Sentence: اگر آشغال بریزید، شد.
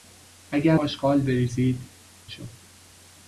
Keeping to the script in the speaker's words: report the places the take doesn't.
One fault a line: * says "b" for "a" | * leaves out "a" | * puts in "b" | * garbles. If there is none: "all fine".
all fine